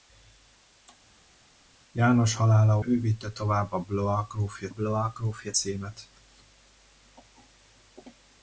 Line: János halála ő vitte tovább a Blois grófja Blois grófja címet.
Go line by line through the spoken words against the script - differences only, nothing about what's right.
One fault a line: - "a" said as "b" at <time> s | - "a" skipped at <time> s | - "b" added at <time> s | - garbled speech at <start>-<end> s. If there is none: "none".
none